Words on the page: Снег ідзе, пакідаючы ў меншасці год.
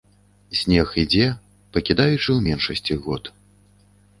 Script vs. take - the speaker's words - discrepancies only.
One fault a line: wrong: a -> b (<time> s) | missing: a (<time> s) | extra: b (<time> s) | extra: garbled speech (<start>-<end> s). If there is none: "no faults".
no faults